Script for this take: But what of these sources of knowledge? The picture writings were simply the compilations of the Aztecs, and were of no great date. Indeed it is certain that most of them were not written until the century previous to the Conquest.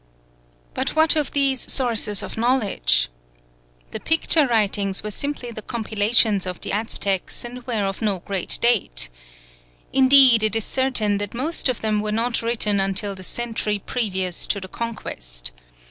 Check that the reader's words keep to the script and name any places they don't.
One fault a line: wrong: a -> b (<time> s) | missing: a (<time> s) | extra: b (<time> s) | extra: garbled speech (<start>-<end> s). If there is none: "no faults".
no faults